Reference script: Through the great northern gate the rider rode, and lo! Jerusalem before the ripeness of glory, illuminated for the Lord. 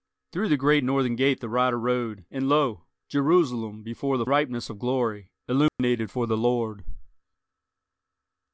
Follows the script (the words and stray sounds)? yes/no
no